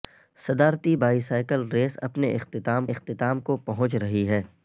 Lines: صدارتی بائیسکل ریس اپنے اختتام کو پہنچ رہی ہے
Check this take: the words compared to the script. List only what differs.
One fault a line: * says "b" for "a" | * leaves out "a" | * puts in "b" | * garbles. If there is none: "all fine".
* puts in "اختتام"